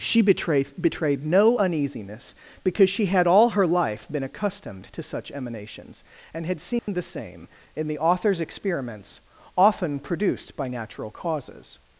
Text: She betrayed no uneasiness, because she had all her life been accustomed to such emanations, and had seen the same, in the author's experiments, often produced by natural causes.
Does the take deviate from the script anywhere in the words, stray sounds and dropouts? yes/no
yes